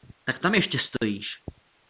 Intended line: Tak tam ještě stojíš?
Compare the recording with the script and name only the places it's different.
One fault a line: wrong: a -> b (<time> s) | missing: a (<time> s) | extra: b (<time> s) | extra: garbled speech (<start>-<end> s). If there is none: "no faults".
no faults